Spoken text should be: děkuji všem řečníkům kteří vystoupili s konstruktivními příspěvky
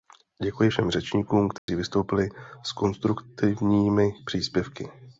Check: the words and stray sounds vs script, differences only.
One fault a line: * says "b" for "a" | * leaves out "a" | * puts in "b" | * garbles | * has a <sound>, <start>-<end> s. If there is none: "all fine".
* has a dropout, 1.6-1.7 s